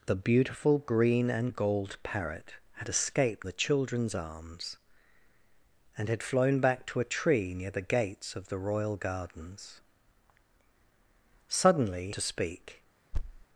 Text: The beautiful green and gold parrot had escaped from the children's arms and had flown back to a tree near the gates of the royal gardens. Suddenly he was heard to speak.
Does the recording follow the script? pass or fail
fail